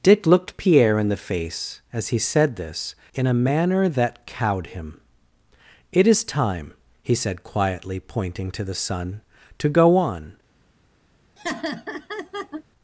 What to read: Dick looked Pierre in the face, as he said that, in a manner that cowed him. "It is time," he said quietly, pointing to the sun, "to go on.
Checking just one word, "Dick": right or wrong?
right